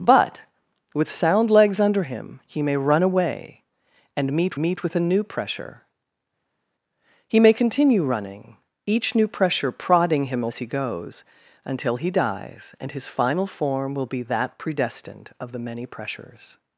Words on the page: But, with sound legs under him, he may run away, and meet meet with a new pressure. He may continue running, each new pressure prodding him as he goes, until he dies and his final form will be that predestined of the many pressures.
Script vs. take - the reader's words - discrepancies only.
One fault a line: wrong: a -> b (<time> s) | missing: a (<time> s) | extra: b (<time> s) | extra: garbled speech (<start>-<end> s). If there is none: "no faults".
no faults